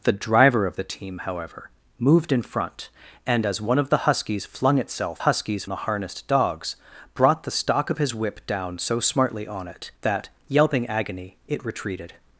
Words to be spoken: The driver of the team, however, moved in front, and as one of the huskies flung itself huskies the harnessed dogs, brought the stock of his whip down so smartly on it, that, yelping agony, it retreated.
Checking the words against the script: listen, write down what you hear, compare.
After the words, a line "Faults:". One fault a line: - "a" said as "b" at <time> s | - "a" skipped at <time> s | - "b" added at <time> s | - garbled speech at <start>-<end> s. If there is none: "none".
The driver of the team, however, moved in front, and as one of the huskies flung itself huskies the harnessed dogs, brought the stock of his whip down so smartly on it, that, yelping agony, it retreated.
Faults:
none